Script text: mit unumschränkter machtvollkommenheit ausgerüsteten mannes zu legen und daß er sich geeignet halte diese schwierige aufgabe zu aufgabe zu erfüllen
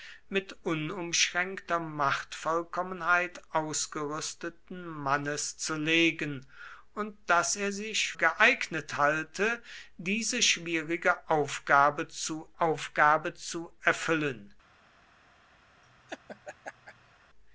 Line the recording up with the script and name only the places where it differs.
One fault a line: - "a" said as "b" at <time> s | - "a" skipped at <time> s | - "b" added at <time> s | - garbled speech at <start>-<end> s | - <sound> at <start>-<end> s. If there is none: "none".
- laugh at 15.8-17.1 s